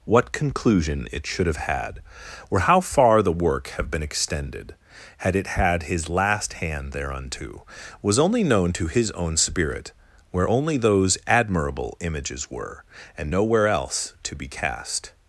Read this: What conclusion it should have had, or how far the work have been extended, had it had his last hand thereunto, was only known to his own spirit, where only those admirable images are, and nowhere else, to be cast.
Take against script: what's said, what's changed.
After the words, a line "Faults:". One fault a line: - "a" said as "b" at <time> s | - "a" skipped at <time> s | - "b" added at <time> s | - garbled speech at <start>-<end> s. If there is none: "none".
What conclusion it should have had, or how far the work have been extended, had it had his last hand thereunto, was only known to his own spirit, where only those admirable images were, and nowhere else, to be cast.
Faults:
- "are" said as "were" at 12.5 s